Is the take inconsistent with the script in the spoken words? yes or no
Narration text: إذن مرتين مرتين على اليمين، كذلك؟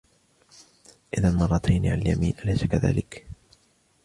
yes